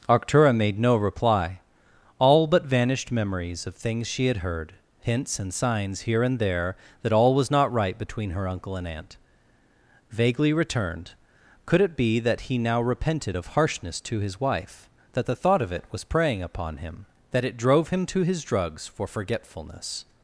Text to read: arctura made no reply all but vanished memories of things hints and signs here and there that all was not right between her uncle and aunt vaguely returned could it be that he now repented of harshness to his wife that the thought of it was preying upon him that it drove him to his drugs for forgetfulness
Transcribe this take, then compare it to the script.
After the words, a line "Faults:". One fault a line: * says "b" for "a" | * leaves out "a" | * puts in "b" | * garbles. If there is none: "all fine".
arctura made no reply all but vanished memories of things she had heard hints and signs here and there that all was not right between her uncle and aunt vaguely returned could it be that he now repented of harshness to his wife that the thought of it was preying upon him that it drove him to his drugs for forgetfulness
Faults:
* puts in "she had heard"